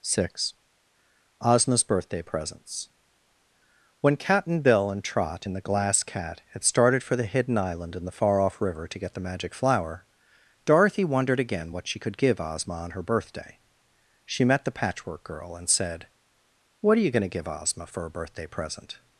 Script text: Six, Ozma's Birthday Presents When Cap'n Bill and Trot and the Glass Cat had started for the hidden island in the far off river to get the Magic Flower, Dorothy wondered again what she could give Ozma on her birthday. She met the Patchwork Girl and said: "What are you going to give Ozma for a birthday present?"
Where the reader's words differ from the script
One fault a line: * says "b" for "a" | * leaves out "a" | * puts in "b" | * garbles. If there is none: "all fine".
all fine